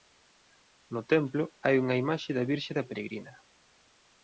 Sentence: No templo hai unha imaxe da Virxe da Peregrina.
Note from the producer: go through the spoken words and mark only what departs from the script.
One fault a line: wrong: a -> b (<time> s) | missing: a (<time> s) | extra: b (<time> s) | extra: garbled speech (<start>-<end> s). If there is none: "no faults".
no faults